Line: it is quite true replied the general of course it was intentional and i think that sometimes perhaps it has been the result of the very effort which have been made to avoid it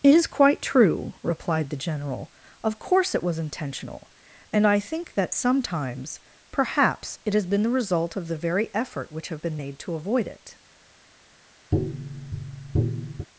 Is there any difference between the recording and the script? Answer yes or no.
no